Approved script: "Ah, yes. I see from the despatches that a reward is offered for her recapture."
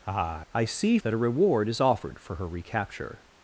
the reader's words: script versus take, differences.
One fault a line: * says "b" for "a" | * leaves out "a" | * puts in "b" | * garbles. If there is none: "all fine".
* leaves out "yes"
* leaves out "from the despatches"